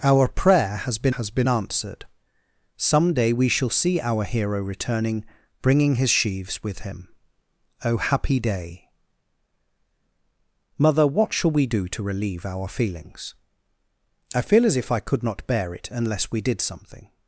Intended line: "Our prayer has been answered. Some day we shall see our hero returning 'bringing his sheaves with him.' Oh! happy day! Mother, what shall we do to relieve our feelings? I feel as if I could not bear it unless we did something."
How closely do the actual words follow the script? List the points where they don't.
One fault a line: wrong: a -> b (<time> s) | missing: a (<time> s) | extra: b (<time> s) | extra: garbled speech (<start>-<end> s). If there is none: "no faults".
extra: has been (1.1 s)